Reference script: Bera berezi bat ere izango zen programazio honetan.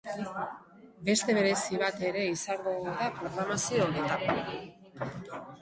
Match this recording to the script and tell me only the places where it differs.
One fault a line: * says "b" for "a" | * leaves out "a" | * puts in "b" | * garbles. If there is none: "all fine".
* says "Beste" for "Bera"
* says "da" for "zen"